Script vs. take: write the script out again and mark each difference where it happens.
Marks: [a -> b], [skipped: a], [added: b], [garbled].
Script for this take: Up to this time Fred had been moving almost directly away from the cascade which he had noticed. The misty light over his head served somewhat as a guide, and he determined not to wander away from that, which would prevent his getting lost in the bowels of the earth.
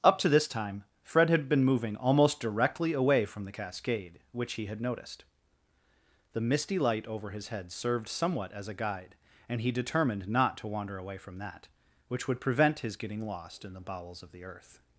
Up to this time Fred had been moving almost directly away from the cascade which he had noticed. The misty light over his head served somewhat as a guide, and he determined not to wander away from that, which would prevent his getting lost in the bowels of the earth.